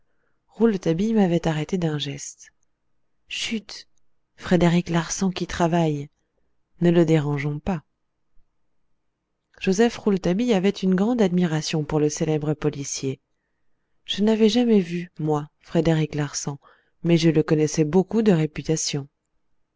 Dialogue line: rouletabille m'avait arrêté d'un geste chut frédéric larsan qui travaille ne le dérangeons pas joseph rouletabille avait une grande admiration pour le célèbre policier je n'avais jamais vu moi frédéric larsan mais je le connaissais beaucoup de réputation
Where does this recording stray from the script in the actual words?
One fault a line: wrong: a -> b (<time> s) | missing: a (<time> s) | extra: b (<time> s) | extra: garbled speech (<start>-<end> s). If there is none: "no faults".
no faults